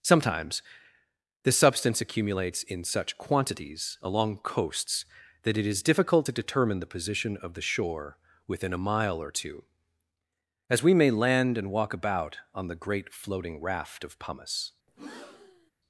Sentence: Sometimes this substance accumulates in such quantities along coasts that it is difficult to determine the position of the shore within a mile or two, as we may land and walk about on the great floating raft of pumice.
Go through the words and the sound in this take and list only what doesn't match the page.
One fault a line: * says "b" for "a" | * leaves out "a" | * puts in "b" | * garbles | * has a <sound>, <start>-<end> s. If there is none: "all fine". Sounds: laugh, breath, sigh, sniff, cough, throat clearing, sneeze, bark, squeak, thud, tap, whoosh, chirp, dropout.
* has a breath, 14.9-15.7 s